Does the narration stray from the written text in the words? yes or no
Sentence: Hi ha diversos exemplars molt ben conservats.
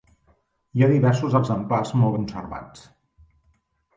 yes